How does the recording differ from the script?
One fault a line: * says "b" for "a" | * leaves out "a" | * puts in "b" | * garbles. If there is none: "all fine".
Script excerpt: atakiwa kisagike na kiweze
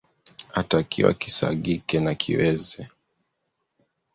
all fine